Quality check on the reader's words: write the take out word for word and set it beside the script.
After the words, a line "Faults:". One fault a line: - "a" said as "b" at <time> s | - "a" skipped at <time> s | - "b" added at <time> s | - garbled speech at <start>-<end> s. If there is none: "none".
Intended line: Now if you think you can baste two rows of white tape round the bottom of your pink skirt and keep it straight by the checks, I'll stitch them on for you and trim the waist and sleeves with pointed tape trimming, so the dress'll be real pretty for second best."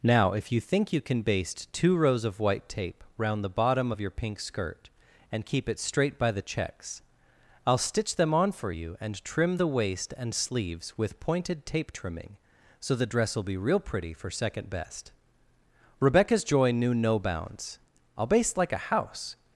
Now if you think you can baste two rows of white tape round the bottom of your pink skirt and keep it straight by the checks, I'll stitch them on for you and trim the waist and sleeves with pointed tape trimming, so the dress'll be real pretty for second best." Rebecca's joy knew no bounds. "I'll baste like a house
Faults:
- "Rebecca's joy knew no bounds I'll baste like a house" added at 16.0 s